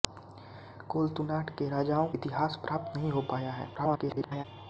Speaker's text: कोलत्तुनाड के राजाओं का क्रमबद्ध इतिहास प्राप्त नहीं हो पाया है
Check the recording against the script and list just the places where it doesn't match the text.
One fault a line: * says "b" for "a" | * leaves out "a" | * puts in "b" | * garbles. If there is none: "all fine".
* leaves out "का क्रमबद्ध"
* garbles